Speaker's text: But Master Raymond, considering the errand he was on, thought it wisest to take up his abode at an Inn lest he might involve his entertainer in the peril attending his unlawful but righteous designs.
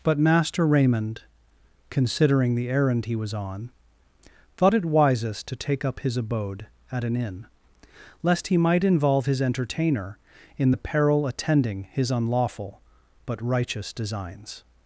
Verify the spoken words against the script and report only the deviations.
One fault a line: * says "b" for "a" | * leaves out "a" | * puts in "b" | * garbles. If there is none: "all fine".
all fine